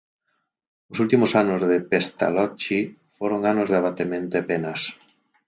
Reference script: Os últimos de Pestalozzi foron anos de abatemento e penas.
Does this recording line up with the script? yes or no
no